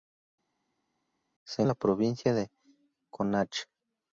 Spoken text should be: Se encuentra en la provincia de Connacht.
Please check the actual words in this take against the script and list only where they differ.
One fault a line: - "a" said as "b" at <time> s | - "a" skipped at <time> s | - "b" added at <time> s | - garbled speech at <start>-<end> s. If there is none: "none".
- "encuentra" skipped at 1.6 s